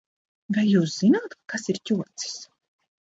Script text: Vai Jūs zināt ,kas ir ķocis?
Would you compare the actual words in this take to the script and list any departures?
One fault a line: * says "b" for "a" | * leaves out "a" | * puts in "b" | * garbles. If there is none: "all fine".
all fine